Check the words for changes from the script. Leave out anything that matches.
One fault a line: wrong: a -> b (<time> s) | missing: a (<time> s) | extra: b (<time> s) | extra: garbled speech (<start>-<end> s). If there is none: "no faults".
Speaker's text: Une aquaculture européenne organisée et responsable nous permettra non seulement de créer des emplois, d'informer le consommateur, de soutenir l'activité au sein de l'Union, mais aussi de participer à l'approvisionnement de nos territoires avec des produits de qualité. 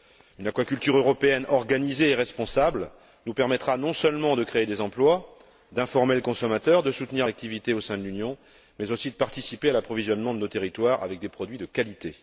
no faults